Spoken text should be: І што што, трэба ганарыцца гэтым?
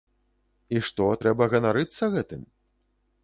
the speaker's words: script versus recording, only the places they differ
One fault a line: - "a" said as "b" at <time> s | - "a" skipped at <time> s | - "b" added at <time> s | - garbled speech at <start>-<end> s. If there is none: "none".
- "што" skipped at 1.1 s